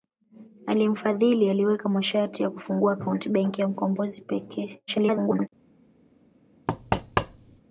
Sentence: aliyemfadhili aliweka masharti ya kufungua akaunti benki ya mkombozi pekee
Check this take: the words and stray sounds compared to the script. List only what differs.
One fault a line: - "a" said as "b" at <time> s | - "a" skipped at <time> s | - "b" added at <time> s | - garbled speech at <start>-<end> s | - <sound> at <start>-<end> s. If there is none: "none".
- garbled speech at 4.9-5.5 s
- thud at 6.7-7.6 s